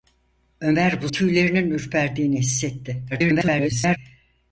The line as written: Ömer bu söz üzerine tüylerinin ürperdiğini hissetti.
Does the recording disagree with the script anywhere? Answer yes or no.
yes